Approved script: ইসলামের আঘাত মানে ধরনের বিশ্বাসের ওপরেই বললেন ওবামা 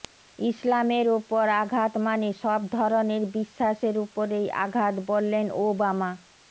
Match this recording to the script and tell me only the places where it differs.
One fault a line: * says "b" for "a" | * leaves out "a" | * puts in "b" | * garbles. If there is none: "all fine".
* puts in "ওপর"
* puts in "সব"
* puts in "আঘাত"